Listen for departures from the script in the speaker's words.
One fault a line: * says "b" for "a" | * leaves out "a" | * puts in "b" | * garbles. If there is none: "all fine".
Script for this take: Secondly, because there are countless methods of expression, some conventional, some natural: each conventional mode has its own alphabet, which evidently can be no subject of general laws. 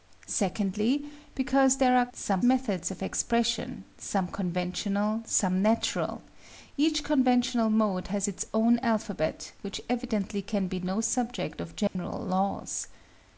* says "some" for "countless"